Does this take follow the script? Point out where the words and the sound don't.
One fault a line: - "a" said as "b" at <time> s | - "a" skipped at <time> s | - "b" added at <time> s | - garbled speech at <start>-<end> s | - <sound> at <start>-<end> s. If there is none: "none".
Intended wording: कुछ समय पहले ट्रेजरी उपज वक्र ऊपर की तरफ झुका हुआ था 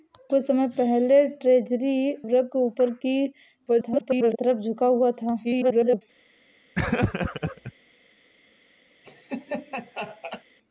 - "उपज" skipped at 2.1 s
- garbled speech at 3.7-4.4 s
- garbled speech at 5.4-6.0 s
- laugh at 6.8-7.7 s
- laugh at 9.0-10.4 s